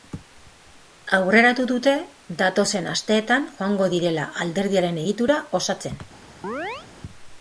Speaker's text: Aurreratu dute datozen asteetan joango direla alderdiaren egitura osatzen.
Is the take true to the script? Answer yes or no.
yes